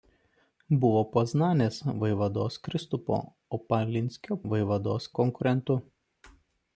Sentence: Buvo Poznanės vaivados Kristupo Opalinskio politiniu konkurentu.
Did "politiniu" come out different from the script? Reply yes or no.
yes